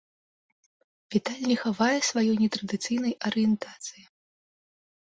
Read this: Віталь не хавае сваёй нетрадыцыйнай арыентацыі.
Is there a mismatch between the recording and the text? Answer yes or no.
no